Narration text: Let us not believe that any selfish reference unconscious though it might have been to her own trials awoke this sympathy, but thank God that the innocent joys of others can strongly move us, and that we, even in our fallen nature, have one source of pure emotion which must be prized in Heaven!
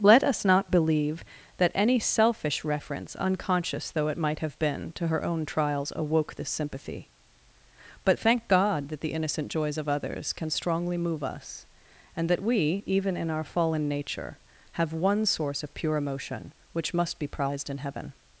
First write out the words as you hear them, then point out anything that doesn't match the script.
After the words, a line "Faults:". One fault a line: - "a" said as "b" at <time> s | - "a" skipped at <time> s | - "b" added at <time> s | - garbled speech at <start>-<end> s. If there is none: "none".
Let us not believe that any selfish reference unconscious though it might have been to her own trials awoke this sympathy, but thank God that the innocent joys of others can strongly move us, and that we, even in our fallen nature, have one source of pure emotion which must be prized in Heaven!
Faults:
none